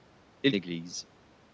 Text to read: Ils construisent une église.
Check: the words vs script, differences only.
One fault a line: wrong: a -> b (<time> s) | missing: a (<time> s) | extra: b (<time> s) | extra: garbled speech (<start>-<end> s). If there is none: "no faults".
missing: construisent une (0.6 s)